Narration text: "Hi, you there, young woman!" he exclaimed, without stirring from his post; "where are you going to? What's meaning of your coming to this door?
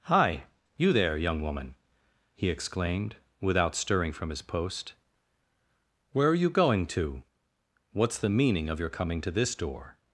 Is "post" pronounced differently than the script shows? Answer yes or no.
no